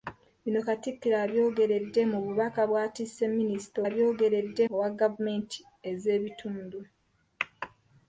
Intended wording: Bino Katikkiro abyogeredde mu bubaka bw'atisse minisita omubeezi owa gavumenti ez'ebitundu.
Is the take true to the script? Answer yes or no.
no